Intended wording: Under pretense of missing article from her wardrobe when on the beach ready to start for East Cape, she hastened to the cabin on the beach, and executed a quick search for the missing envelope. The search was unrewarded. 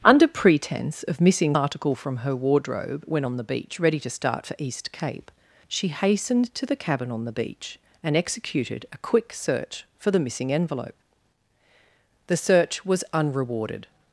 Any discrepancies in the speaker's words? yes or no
no